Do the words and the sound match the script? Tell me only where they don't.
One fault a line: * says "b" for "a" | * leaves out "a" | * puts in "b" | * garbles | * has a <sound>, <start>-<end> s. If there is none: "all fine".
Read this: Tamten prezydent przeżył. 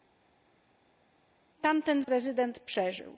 all fine